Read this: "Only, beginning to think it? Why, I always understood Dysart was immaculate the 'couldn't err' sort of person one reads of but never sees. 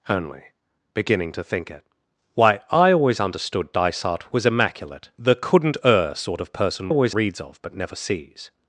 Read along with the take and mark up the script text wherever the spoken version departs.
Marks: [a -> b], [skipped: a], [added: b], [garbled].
"Only, beginning to think it? Why, I always understood Dysart was immaculate the 'couldn't err' sort of person [one -> always] reads of but never sees.